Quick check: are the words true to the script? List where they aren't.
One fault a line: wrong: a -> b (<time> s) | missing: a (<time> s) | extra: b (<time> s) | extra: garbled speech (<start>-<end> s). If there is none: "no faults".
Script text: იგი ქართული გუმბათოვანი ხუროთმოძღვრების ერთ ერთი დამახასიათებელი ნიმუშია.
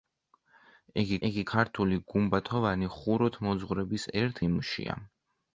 extra: იგი (1.3 s)
missing: ერთი დამახასიათებელი (4.4 s)